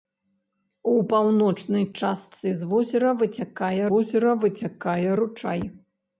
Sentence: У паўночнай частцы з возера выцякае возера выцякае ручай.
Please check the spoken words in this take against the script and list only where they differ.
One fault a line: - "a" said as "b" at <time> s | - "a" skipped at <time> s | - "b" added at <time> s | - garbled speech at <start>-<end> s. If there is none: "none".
none